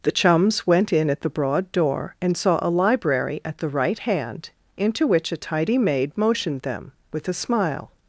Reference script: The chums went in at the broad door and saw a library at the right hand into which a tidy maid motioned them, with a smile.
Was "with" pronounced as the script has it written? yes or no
yes